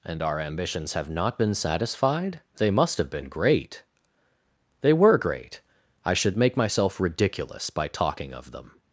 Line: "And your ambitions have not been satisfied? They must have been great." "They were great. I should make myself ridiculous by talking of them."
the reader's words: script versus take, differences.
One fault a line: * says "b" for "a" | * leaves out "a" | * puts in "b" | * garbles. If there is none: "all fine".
* says "our" for "your"